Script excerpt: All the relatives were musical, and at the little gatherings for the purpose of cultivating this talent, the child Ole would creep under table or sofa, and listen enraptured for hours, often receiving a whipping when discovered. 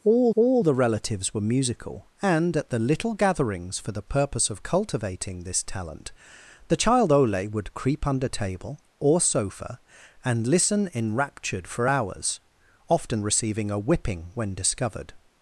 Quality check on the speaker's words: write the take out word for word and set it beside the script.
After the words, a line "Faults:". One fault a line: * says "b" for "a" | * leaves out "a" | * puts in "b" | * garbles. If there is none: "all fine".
All all the relatives were musical, and at the little gatherings for the purpose of cultivating this talent, the child Ole would creep under table or sofa, and listen enraptured for hours, often receiving a whipping when discovered.
Faults:
* puts in "all"